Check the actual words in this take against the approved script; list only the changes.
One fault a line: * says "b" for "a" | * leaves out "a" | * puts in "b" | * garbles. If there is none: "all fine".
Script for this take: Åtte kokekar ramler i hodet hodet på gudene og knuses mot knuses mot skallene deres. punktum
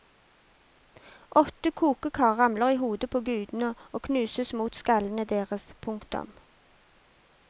* leaves out "hodet"
* leaves out "knuses mot"